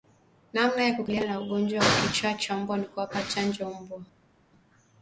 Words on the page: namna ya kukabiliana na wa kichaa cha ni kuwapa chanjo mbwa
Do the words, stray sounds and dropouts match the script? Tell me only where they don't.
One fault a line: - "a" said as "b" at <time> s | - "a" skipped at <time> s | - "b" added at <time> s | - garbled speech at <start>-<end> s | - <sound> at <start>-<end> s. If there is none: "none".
- "ugonjwa" added at 1.4 s
- "mbwa" added at 2.6 s